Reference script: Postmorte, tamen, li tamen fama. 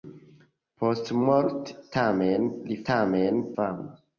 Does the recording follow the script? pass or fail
pass